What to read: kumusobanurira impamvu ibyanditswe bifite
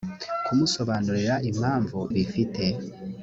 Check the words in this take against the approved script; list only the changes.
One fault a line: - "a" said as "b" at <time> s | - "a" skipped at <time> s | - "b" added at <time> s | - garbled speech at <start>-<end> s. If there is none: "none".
- "ibyanditswe" skipped at 2.0 s